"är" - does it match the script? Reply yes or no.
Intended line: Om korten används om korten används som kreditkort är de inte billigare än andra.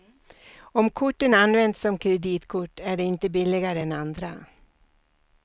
yes